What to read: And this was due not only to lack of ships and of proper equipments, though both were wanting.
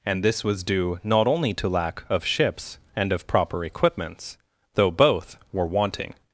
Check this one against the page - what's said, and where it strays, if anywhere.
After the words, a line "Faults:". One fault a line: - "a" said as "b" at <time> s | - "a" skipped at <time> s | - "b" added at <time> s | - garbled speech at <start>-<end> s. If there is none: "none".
And this was due not only to lack of ships and of proper equipments, though both were wanting.
Faults:
none